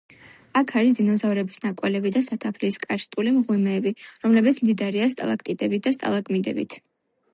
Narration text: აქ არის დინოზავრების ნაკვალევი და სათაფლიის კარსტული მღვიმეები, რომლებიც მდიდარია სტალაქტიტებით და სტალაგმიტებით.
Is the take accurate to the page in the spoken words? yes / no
yes